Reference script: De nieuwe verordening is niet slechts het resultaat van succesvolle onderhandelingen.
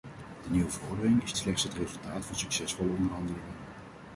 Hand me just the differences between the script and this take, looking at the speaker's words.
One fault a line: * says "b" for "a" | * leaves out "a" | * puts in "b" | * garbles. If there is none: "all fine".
* leaves out "niet"